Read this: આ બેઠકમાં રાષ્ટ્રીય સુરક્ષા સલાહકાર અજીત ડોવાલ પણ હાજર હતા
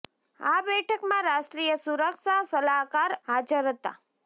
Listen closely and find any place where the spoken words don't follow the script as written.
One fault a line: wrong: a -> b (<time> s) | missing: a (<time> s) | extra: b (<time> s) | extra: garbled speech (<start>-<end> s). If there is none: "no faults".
missing: અજીત ડોવાલ પણ (3.2 s)